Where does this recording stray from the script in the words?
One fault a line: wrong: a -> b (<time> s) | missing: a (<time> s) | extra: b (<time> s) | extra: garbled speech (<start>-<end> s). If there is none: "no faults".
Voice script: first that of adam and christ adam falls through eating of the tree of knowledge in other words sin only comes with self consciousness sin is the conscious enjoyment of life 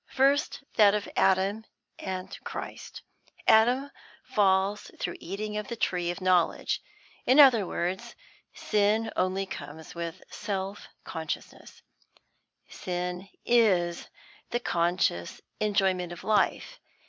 no faults